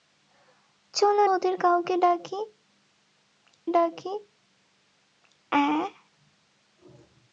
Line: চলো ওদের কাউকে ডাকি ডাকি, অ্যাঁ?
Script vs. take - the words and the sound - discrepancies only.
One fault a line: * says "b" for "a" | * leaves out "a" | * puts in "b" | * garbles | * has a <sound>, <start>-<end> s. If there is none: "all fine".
all fine